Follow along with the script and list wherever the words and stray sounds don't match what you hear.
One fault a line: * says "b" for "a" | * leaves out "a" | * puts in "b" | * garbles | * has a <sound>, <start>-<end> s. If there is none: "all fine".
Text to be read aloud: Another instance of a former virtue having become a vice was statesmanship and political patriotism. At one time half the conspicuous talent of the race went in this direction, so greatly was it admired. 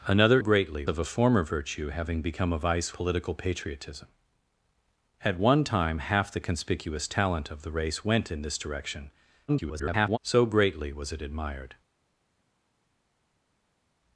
* says "greatly" for "instance"
* leaves out "was statesmanship and"
* garbles